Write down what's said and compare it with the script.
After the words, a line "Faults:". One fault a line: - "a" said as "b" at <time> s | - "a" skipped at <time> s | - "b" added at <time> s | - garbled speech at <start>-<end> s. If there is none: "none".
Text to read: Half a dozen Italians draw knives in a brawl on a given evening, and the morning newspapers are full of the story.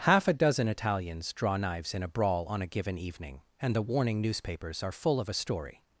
Half a dozen Italians draw knives in a brawl on a given evening, and the warning newspapers are full of a story.
Faults:
- "morning" said as "warning" at 3.8 s
- "the" said as "a" at 5.3 s